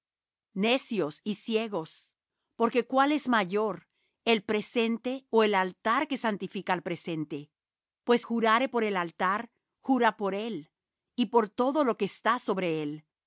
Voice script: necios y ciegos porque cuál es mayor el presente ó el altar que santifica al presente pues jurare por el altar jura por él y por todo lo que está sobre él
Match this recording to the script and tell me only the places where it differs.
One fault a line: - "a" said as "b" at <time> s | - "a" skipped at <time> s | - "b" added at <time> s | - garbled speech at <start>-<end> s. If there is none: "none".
none